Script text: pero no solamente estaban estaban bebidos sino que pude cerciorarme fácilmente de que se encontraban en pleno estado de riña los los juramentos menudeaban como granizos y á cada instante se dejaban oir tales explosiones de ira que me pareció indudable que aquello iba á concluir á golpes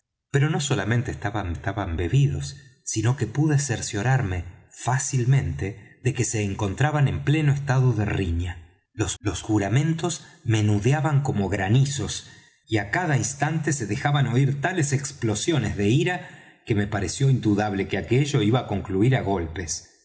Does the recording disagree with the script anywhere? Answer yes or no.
no